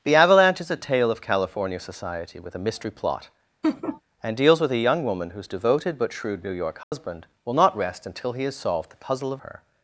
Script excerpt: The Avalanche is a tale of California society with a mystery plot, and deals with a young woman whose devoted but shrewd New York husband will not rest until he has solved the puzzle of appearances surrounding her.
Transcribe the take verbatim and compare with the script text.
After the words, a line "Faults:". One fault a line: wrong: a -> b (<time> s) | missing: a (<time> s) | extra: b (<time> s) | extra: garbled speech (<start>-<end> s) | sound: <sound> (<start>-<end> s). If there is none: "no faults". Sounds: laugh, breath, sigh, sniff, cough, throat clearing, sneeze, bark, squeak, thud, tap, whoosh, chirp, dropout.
The Avalanche is a tale of California society with a mystery plot, and deals with a young woman whose devoted but shrewd New York husband will not rest until he has solved the puzzle of her.
Faults:
sound: laugh (3.6-4.0 s)
sound: dropout (6.8-6.9 s)
missing: appearances surrounding (9.4 s)